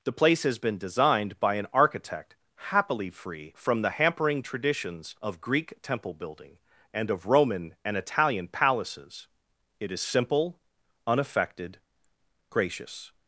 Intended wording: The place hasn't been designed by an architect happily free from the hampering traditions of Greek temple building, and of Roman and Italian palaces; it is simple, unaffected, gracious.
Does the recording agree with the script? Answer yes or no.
no